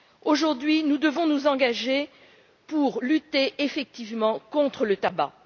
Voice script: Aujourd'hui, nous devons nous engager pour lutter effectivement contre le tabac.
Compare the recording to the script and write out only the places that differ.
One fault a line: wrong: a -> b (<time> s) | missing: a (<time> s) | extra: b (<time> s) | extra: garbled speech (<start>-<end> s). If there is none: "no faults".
no faults